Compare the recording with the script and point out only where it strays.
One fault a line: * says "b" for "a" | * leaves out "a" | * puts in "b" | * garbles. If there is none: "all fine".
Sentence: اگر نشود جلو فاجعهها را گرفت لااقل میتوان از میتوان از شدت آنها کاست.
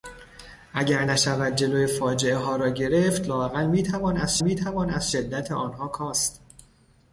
all fine